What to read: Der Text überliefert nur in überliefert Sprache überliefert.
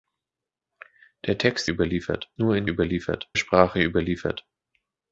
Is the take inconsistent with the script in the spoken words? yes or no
no